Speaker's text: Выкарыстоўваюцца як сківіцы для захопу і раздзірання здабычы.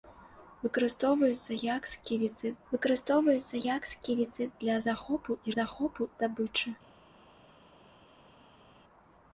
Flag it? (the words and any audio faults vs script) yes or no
yes